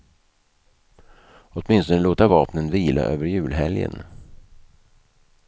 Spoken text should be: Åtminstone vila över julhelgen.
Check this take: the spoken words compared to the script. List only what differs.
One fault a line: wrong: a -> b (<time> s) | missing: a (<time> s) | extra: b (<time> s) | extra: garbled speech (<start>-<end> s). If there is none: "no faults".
extra: låta vapnen (2.0 s)